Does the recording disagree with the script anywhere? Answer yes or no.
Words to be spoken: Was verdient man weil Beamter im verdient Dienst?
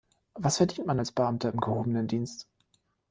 yes